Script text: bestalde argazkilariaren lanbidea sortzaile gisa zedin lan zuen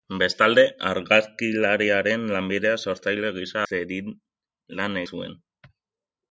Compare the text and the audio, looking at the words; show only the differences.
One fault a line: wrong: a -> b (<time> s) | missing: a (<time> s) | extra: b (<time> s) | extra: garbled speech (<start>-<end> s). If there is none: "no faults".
no faults